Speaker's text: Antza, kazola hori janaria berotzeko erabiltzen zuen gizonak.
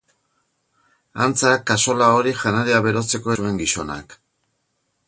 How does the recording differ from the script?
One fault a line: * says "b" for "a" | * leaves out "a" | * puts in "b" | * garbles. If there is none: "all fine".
* leaves out "erabiltzen"